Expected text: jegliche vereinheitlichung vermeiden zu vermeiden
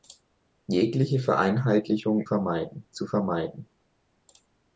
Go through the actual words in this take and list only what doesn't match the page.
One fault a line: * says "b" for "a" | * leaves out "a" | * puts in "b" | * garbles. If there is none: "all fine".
all fine